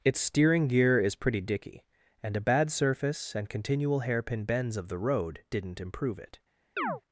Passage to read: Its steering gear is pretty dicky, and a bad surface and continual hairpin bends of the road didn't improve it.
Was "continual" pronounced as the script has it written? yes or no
yes